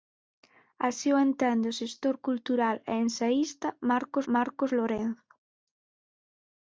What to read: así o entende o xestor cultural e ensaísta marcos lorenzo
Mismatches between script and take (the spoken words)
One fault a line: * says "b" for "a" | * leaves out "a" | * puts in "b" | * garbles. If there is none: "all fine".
* puts in "marcos"